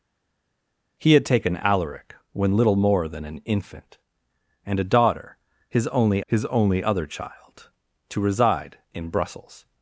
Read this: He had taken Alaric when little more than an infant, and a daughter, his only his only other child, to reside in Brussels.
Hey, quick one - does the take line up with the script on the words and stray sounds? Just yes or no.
yes